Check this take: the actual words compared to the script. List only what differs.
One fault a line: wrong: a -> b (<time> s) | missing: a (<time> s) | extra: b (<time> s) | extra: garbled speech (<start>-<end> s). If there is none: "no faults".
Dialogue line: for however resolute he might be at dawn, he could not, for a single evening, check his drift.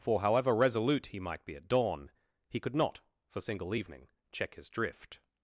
missing: a (3.4 s)